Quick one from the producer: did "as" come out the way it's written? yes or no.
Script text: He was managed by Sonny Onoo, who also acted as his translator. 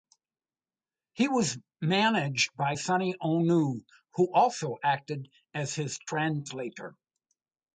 yes